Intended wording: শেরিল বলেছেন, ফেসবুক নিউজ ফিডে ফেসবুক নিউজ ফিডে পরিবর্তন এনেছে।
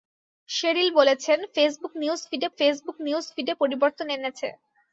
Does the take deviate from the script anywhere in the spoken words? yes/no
no